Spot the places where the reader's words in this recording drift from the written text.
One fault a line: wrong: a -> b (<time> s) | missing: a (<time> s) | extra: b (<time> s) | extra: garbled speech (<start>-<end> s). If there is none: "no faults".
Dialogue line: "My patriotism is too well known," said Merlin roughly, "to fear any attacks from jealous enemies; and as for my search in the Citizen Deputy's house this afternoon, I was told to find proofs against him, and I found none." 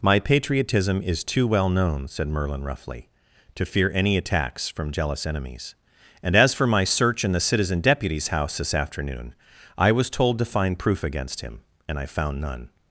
wrong: proofs -> proof (10.8 s)